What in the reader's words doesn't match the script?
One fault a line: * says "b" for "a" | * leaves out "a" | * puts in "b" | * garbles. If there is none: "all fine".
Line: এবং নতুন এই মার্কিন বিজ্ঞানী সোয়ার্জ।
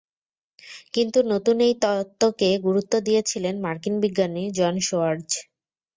* says "কিন্তু" for "এবং"
* puts in "তত্ত্বকে গুরুত্ব দিয়েছিলেন"
* puts in "জন"